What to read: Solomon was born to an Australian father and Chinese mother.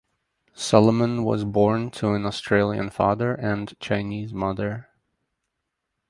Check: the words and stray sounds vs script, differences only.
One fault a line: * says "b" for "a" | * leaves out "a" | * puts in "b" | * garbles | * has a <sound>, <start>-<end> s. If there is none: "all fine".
all fine